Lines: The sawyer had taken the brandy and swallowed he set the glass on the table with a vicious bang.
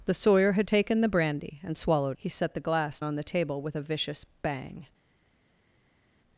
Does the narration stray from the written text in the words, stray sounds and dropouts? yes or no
no